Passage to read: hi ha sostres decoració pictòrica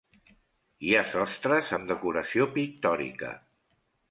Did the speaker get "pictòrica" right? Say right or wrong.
right